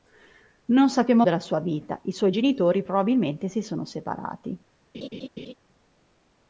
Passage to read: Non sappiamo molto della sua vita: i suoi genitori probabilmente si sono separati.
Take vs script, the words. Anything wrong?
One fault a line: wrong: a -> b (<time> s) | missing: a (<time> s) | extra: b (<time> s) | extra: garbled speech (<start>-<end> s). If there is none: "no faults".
missing: molto (1.3 s)